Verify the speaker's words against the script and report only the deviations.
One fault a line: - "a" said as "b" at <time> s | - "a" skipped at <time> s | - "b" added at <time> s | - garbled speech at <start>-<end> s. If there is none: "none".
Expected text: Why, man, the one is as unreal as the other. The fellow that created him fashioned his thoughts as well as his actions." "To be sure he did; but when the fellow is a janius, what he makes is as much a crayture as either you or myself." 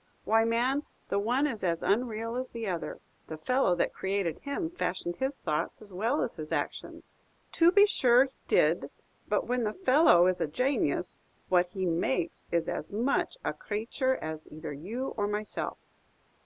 none